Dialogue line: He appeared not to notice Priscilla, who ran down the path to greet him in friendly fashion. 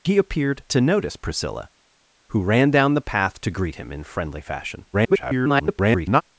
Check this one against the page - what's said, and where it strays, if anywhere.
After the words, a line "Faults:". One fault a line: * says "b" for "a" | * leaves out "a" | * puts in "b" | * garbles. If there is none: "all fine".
He appeared to notice Priscilla, who ran down the path to greet him in friendly fashion. [garbled]
Faults:
* leaves out "not"
* garbles